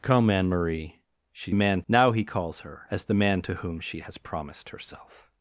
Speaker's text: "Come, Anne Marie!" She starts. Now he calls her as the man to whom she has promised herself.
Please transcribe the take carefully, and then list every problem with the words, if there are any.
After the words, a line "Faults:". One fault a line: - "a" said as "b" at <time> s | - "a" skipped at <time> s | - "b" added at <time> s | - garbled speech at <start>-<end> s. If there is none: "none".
"Come, Anne Marie!" She man. Now he calls her as the man to whom she has promised herself.
Faults:
- "starts" said as "man" at 1.5 s